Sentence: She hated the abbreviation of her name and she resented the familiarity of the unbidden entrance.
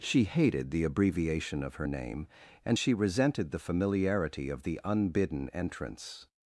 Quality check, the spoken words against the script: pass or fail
pass